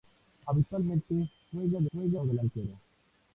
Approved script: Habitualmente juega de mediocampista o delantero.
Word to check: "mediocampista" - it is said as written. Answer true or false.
false